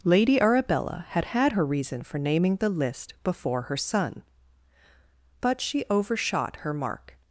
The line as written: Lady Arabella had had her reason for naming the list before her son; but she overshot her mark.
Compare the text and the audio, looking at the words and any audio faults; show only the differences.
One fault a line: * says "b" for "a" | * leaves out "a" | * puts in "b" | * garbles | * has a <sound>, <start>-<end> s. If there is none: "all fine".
all fine